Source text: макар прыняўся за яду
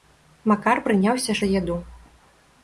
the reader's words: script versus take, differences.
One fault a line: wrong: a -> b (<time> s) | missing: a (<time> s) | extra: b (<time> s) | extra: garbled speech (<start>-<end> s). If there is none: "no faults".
no faults